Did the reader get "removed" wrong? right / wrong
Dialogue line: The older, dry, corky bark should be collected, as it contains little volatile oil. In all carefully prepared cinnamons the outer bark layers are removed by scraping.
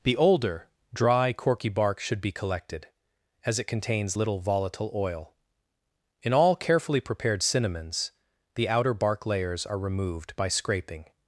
right